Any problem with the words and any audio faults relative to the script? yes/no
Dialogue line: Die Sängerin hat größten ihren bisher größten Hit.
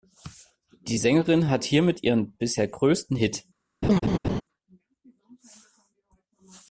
yes